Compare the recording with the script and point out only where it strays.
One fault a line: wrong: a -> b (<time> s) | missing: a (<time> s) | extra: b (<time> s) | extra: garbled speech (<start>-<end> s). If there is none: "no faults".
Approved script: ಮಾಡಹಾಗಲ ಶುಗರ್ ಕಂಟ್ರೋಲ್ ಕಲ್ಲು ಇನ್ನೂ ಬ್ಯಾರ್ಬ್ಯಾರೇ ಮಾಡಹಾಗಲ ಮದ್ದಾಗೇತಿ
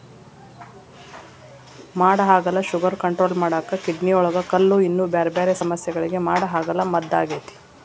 extra: ಮಾಡಾಕ ಕಿಡ್ನಿಯೊಳಗ (3.4 s)
extra: ಸಮಸ್ಯಗಳಿಗೆ (5.6 s)